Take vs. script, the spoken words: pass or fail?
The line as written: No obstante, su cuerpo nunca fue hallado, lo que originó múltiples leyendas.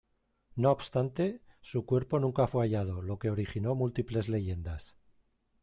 pass